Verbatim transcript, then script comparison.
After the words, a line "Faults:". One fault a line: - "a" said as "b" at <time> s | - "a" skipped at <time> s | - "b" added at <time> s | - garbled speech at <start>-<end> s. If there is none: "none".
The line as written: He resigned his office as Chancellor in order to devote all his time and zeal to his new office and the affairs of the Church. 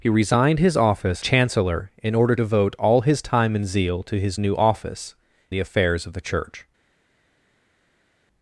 He resigned his office Chancellor in order devote all his time and zeal to his new office the affairs of the Church.
Faults:
- "as" skipped at 1.2 s
- "to" skipped at 2.3 s
- "and" skipped at 5.1 s